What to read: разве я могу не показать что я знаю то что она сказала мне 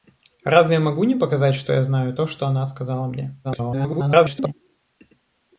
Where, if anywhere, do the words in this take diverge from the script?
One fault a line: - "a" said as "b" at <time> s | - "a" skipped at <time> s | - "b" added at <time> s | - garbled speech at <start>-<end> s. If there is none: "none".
- garbled speech at 3.4-4.5 s